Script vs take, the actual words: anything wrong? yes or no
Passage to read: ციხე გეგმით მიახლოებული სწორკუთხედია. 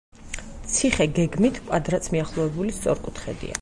yes